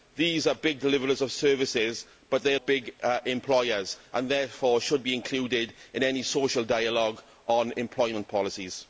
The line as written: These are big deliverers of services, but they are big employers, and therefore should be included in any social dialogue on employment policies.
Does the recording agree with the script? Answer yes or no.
yes